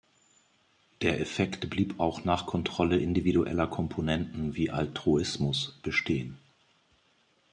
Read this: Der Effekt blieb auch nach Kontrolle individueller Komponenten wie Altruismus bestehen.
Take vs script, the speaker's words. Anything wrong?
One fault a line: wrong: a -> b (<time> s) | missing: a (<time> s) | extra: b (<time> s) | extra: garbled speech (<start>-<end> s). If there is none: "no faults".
no faults